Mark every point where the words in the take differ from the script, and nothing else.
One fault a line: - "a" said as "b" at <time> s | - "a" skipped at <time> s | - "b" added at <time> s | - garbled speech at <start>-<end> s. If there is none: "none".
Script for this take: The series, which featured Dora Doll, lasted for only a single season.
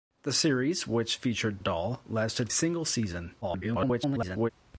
- "Dora" skipped at 1.6 s
- "for only a" skipped at 2.5 s
- garbled speech at 3.4-4.5 s